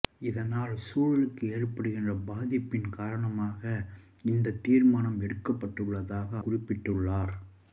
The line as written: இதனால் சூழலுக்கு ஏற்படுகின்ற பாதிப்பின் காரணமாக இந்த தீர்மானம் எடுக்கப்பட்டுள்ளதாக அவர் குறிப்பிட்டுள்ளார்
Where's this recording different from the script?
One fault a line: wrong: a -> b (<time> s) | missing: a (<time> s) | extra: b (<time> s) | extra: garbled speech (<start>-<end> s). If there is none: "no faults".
missing: அவர் (6.3 s)